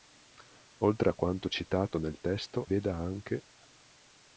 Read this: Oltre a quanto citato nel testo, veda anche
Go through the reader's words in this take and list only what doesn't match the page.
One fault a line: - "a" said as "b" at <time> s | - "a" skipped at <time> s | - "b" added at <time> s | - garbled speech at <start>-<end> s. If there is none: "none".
none